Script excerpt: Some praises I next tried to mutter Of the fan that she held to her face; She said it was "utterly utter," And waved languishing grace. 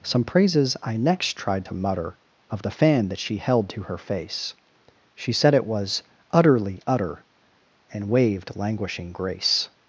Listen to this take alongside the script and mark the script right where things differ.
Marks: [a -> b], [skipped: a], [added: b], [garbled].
Some praises I next tried to mutter Of the fan that she held to her face; She said it was "utterly utter," And waved languishing grace.